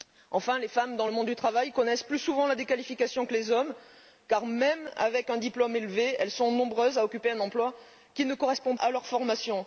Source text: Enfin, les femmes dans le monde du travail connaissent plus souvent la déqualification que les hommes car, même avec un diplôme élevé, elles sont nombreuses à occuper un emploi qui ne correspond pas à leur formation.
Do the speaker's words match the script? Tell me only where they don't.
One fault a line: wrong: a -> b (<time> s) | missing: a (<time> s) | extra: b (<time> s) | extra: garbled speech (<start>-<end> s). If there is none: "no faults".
missing: pas (8.8 s)